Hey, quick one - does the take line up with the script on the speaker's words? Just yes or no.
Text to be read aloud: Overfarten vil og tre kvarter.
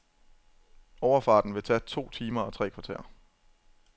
no